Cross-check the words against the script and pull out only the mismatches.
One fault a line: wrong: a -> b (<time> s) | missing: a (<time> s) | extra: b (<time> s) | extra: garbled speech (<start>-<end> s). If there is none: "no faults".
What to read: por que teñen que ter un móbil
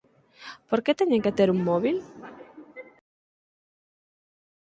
no faults